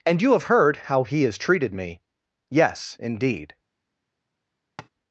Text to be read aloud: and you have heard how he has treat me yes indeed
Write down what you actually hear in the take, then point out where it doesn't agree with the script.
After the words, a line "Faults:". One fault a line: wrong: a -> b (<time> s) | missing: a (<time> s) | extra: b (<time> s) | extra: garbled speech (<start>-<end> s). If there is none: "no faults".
and you have heard how he has treated me yes indeed
Faults:
wrong: treat -> treated (1.4 s)